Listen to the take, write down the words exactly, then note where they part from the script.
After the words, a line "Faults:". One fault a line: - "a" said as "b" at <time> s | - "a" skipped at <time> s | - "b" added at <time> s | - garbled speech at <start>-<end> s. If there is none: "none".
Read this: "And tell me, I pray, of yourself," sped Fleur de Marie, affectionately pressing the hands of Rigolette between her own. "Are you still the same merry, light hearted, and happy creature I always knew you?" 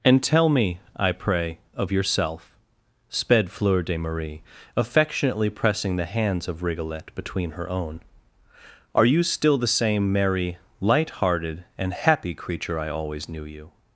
"And tell me, I pray, of yourself," sped Fleur de Marie, affectionately pressing the hands of Rigolette between her own. "Are you still the same merry, light hearted, and happy creature I always knew you?"
Faults:
none